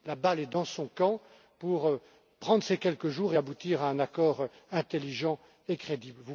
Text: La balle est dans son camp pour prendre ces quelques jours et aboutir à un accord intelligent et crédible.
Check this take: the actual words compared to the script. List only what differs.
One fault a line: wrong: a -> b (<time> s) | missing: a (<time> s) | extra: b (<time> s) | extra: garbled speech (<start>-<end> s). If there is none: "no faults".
no faults